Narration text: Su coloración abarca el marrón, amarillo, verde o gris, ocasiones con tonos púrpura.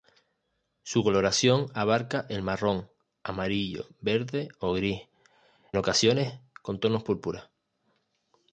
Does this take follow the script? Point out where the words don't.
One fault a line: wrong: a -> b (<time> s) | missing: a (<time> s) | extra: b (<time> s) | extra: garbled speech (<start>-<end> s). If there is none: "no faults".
no faults